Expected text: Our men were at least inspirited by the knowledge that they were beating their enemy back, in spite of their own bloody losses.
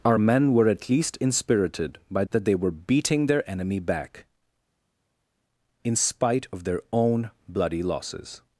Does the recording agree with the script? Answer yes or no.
no